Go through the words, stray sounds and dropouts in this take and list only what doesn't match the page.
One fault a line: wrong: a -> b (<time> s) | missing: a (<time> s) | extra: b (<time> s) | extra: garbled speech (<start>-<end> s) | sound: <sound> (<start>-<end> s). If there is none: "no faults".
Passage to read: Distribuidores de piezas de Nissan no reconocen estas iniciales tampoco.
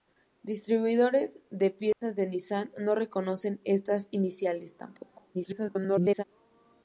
sound: dropout (1.9-2.0 s)
extra: garbled speech (5.3-6.2 s)